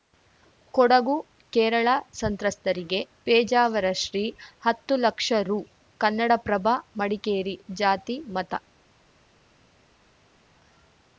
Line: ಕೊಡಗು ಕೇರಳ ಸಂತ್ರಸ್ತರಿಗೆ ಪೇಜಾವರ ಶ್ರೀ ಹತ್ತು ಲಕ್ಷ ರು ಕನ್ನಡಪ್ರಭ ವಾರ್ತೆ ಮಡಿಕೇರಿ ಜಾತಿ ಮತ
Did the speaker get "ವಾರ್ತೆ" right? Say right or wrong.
wrong